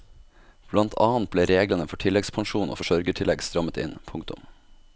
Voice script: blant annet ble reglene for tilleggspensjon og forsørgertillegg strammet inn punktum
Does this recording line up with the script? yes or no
yes